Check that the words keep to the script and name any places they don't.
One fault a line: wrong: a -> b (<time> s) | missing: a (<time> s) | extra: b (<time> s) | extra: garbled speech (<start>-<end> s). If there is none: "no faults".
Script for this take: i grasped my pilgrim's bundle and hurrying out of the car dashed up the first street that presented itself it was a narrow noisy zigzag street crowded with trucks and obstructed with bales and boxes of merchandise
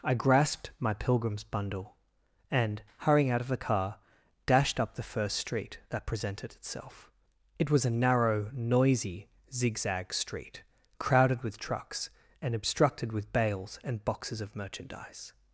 no faults